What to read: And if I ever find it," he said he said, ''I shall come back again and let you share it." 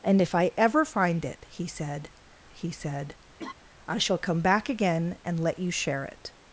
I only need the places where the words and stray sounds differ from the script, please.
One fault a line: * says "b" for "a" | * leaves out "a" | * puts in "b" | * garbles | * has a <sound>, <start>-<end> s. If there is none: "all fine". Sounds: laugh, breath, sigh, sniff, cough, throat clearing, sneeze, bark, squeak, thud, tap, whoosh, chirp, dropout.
* has a laugh, 3.4-3.5 s